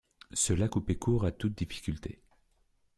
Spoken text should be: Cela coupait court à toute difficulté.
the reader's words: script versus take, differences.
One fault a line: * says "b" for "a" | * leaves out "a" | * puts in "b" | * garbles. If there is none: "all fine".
all fine